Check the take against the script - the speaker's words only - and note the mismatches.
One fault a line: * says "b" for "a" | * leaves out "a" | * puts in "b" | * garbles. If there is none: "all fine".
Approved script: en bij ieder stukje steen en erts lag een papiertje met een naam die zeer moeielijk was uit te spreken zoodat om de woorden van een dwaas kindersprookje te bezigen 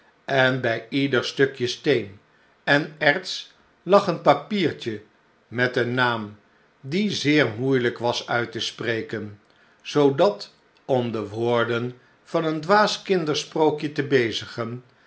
all fine